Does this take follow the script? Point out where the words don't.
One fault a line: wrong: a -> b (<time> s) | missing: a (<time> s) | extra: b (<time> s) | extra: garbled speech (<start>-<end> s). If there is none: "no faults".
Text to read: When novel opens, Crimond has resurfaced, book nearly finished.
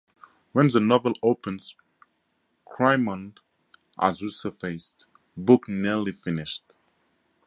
extra: the (0.7 s)